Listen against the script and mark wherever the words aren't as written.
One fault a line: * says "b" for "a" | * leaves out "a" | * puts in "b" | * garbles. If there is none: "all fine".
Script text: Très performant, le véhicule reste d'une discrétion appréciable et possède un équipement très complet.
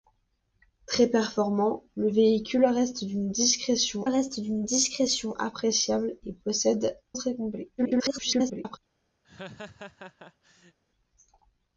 * puts in "reste d'une discrétion"
* leaves out "un équipement"
* garbles